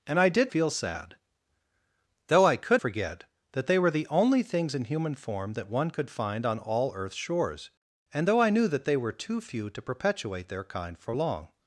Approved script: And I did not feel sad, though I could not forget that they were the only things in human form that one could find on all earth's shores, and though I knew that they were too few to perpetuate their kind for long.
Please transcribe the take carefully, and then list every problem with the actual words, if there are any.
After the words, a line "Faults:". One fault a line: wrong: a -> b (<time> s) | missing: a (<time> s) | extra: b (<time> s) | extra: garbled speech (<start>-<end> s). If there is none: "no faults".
And I did feel sad, though I could forget that they were the only things in human form that one could find on all earth's shores, and though I knew that they were too few to perpetuate their kind for long.
Faults:
missing: not (0.5 s)
missing: not (2.8 s)